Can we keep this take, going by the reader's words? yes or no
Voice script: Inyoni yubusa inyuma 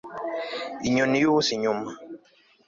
yes